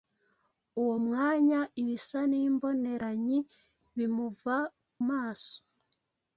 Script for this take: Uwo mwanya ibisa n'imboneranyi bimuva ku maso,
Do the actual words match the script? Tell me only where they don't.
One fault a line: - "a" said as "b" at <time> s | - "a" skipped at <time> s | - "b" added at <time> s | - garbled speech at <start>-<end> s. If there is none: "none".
- "ku" skipped at 4.5 s